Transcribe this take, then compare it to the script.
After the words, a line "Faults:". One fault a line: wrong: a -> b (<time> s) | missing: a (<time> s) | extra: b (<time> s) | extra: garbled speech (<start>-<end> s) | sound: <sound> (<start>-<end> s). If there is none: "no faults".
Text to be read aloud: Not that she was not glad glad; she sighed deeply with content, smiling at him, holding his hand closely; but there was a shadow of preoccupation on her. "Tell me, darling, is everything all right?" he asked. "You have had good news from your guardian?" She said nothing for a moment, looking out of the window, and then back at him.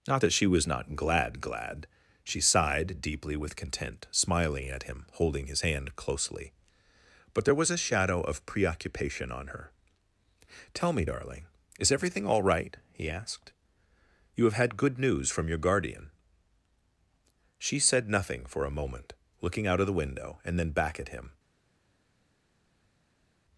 Not that she was not glad glad; she sighed deeply with content, smiling at him, holding his hand closely; but there was a shadow of preoccupation on her. "Tell me, darling, is everything all right?" he asked. "You have had good news from your guardian?" She said nothing for a moment, looking out of the window, and then back at him.
Faults:
no faults